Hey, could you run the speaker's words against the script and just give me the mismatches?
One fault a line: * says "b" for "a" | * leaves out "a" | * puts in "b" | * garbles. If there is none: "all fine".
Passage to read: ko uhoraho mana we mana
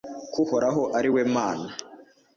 * says "ari" for "mana"